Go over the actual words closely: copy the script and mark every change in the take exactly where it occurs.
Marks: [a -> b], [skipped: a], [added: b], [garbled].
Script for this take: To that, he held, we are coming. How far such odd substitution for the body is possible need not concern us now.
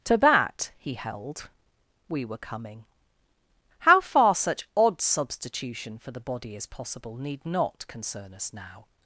To that, he held, we [are -> were] coming. How far such odd substitution for the body is possible need not concern us now.